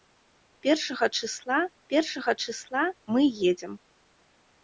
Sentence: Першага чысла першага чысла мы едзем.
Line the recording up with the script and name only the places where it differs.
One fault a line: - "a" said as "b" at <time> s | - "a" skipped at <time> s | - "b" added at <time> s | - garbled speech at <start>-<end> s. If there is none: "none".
none